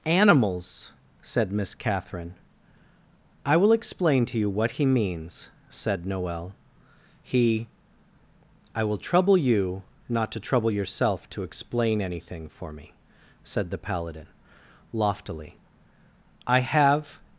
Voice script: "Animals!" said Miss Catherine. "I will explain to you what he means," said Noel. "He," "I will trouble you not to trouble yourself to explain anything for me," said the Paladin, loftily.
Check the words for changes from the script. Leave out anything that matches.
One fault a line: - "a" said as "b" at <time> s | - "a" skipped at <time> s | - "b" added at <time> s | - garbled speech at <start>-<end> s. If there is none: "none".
- "I have" added at 16.5 s